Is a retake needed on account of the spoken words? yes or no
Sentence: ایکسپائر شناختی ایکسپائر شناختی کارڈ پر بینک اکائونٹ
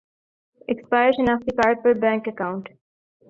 yes